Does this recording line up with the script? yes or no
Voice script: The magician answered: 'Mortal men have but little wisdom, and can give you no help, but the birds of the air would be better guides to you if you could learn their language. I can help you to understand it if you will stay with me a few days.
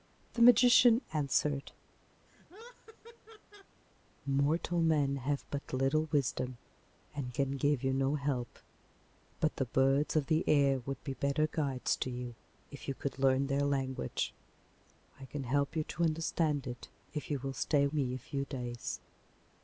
no